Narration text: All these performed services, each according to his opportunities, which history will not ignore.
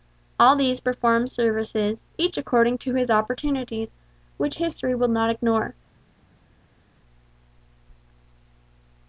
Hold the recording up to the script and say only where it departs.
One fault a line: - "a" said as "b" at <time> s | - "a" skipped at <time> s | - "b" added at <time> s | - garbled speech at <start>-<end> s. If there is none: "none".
none